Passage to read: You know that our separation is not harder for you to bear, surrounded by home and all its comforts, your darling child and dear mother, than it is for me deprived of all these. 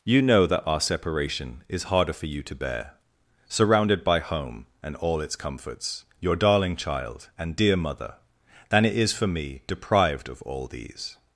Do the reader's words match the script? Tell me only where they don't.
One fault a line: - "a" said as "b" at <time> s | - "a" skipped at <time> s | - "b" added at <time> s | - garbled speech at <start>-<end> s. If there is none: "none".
- "not" skipped at 1.8 s